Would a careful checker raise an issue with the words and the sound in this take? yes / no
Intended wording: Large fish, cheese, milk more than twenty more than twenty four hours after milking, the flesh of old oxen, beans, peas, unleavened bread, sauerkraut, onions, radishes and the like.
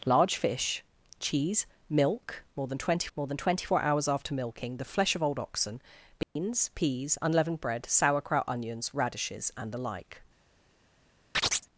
yes